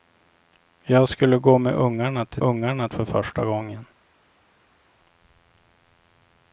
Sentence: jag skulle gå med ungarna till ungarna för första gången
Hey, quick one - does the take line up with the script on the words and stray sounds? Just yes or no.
yes